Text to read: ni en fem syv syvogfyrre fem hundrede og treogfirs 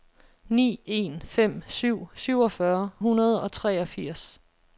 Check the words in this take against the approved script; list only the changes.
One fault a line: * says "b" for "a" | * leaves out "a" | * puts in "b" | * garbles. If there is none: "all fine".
* leaves out "fem"